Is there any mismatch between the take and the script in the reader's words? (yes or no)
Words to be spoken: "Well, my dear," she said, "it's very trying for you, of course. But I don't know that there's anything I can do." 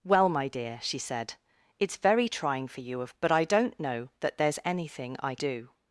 yes